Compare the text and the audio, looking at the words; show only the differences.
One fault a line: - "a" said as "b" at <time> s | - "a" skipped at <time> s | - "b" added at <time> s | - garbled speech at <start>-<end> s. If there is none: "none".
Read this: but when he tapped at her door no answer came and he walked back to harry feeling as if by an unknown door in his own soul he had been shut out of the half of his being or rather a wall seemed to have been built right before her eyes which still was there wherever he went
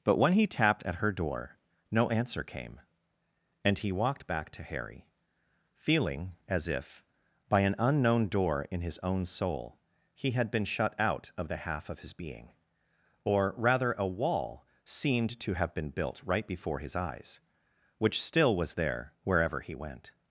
- "her" said as "his" at 16.8 s